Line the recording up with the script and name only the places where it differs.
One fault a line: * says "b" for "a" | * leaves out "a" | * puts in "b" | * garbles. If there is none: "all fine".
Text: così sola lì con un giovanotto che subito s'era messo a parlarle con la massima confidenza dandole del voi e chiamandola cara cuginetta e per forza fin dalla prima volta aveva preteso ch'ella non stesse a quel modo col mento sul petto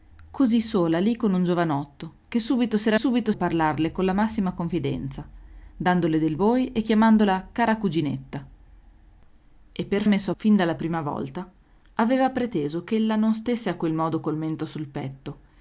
* says "subito" for "messo"
* says "messo" for "forza"